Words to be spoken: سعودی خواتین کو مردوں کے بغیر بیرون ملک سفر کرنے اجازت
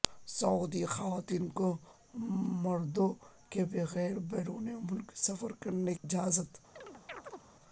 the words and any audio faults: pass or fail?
fail